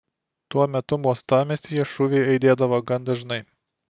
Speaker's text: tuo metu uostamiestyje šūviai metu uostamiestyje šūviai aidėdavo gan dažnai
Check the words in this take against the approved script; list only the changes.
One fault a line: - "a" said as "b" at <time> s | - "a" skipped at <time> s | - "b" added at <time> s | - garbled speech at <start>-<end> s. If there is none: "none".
- "metu uostamiestyje šūviai" skipped at 2.3 s